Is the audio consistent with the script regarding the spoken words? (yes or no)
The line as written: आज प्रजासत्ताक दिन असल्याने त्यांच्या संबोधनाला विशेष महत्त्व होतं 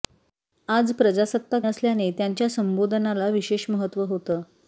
no